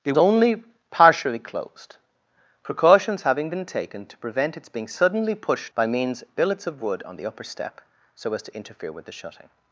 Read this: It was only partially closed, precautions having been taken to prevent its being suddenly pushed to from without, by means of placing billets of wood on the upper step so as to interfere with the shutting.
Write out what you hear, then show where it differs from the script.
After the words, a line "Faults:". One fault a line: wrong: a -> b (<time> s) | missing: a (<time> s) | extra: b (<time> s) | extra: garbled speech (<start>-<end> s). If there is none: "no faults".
It only partially closed, precautions having been taken to prevent its being suddenly pushed by means billets of wood on the upper step so as to interfere with the shutting.
Faults:
missing: was (0.1 s)
missing: to from without (5.7 s)
missing: of placing (6.2 s)